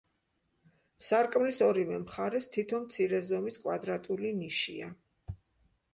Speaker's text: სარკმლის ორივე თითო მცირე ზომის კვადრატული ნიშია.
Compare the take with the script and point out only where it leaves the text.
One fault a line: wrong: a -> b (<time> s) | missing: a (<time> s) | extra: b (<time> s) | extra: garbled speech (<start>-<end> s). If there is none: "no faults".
extra: მხარეს (2.0 s)